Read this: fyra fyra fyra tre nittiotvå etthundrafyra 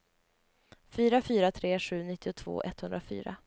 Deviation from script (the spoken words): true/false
true